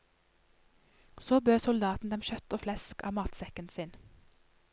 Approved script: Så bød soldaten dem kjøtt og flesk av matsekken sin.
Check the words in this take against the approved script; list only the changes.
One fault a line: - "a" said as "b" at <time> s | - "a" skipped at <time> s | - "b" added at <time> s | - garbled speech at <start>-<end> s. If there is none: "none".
none